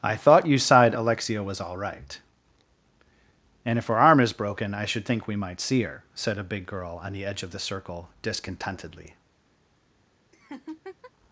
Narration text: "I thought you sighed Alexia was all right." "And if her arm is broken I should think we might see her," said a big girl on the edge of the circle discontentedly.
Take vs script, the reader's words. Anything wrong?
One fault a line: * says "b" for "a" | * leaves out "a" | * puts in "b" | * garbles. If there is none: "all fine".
all fine